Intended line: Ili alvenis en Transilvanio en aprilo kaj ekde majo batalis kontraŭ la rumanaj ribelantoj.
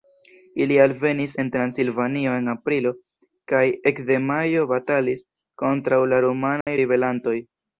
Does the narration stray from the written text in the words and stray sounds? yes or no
yes